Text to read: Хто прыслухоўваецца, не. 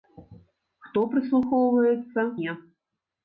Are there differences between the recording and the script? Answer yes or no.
no